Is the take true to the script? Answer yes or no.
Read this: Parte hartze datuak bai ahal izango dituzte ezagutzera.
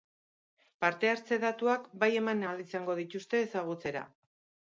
no